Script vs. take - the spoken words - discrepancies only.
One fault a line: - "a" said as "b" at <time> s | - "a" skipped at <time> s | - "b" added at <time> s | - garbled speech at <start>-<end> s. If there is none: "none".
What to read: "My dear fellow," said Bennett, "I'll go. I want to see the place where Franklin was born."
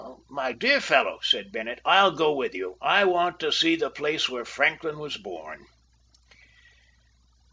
- "with you" added at 2.3 s